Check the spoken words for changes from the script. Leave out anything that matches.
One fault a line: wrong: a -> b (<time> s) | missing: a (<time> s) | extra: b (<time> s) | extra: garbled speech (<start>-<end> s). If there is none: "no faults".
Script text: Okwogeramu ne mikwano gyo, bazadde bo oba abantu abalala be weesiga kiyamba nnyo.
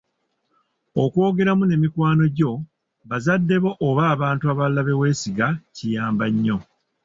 no faults